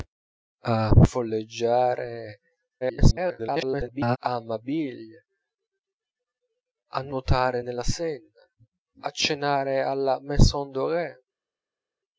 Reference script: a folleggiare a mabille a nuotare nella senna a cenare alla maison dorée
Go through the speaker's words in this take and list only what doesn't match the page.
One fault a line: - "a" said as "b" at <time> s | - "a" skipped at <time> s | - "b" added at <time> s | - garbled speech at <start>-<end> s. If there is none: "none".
- garbled speech at 2.8-4.2 s